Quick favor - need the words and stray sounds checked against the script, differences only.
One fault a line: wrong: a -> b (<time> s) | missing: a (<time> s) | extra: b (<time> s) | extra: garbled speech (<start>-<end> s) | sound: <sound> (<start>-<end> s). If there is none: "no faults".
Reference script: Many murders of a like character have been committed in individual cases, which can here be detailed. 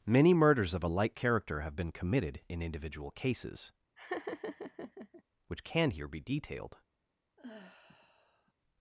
sound: laugh (4.0-5.2 s)
sound: sigh (7.4-8.5 s)